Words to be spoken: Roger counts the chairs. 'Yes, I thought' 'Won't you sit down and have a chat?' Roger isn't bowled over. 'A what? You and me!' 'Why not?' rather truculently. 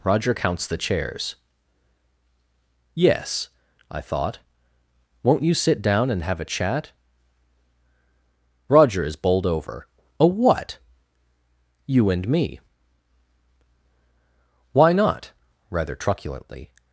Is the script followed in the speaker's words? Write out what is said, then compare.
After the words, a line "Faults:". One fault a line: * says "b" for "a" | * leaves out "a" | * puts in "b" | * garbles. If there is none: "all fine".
Roger counts the chairs. 'Yes, I thought' 'Won't you sit down and have a chat?' Roger is bowled over. 'A what? You and me!' 'Why not?' rather truculently.
Faults:
* says "is" for "isn't"